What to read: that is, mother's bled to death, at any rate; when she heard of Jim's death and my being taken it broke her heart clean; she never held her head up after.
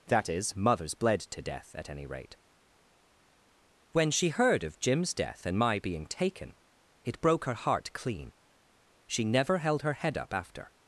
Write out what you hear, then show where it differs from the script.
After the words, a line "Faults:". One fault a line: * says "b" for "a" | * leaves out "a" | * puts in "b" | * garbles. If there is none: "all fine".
that is, mother's bled to death, at any rate; when she heard of Jim's death and my being taken it broke her heart clean; she never held her head up after.
Faults:
all fine